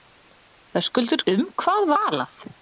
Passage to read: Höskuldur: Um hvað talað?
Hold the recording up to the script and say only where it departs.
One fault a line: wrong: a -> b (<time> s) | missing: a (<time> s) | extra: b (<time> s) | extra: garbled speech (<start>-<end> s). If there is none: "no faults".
no faults